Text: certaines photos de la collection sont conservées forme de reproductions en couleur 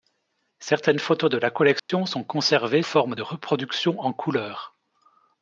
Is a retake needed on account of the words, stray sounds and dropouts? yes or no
yes